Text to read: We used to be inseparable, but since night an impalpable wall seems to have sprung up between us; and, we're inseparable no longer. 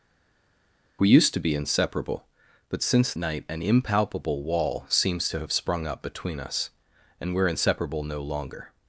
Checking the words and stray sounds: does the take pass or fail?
pass